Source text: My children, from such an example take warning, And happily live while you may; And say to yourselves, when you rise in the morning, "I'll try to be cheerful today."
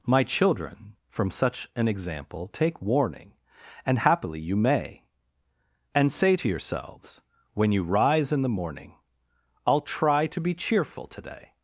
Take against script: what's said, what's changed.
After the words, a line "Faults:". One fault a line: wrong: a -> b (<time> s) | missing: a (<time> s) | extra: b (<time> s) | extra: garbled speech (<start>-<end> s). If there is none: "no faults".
My children, from such an example take warning, And happily you may; And say to yourselves, when you rise in the morning, "I'll try to be cheerful today."
Faults:
missing: live while (4.4 s)